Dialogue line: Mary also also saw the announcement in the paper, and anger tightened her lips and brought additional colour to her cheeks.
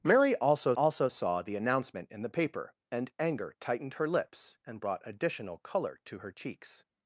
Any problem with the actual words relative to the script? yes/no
no